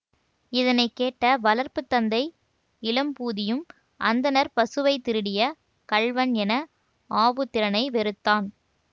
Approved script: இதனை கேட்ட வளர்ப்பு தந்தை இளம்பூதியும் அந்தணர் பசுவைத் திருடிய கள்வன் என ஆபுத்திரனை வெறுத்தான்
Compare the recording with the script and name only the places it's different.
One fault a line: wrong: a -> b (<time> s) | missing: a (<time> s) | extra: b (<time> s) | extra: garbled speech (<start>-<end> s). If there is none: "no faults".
no faults